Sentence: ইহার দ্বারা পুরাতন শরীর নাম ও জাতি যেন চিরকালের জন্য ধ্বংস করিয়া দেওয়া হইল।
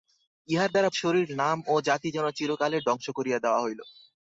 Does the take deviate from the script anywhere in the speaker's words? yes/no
yes